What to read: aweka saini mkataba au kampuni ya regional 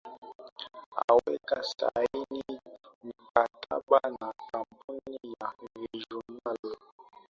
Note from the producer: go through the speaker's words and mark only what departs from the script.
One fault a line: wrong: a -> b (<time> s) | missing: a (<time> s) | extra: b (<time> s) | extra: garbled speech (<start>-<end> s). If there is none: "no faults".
wrong: au -> na (4.2 s)